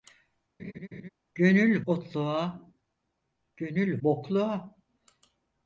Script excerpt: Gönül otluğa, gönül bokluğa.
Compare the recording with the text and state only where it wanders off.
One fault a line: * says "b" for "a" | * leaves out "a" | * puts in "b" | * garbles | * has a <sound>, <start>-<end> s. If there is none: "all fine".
* has a laugh, 0.6-1.1 s